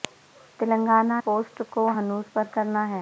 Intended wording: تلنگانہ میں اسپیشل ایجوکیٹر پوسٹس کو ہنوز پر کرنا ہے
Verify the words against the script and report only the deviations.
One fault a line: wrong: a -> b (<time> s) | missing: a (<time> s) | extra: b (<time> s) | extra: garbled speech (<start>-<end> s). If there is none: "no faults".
missing: میں اسپیشل ایجوکیٹر (1.2 s)